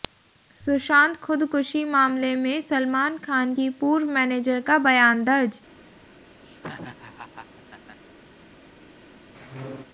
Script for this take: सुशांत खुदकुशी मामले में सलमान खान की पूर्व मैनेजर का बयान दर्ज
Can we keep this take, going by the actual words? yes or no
yes